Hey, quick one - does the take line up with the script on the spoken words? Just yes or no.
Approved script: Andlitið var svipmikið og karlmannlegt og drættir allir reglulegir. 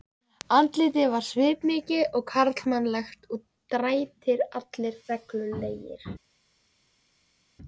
yes